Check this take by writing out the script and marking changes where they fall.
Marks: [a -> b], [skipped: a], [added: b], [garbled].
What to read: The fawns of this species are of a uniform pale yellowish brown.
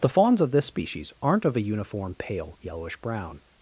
The fawns of this species [are -> aren't] of a uniform pale yellowish brown.